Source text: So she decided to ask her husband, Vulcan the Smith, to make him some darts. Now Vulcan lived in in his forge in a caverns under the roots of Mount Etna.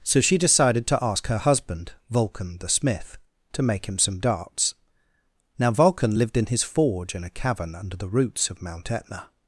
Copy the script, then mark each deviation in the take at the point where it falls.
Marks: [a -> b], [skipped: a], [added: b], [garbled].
So she decided to ask her husband, Vulcan the Smith, to make him some darts. Now Vulcan lived in [skipped: in] his forge in a [caverns -> cavern] under the roots of Mount Etna.